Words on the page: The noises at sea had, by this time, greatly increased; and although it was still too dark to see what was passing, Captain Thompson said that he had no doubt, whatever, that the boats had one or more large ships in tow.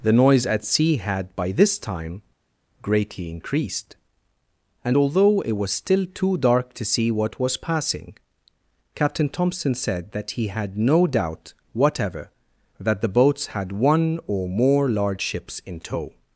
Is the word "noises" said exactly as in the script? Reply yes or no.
no